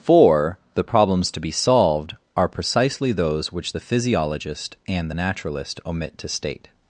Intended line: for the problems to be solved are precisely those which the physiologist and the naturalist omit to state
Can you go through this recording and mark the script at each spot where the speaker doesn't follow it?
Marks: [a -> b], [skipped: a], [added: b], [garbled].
for the problems to be solved are precisely those which the physiologist and the naturalist omit to state